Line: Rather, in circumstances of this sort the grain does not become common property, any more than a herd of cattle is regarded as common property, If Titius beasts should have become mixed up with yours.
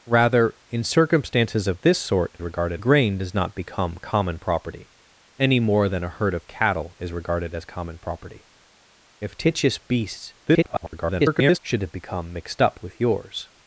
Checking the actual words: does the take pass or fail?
fail